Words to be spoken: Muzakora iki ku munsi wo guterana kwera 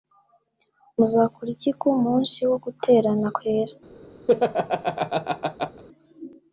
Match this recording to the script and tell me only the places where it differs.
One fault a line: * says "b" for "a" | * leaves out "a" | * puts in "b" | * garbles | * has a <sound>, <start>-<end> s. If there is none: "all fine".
* has a laugh, 4.3-5.8 s